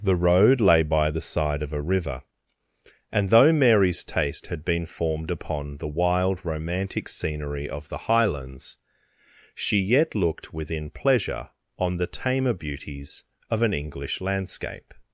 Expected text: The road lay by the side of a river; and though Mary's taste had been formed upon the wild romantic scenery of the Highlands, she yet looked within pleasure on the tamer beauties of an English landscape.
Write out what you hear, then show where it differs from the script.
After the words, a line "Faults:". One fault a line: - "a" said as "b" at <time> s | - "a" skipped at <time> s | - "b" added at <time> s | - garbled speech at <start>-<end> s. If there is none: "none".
The road lay by the side of a river; and though Mary's taste had been formed upon the wild romantic scenery of the Highlands, she yet looked within pleasure on the tamer beauties of an English landscape.
Faults:
none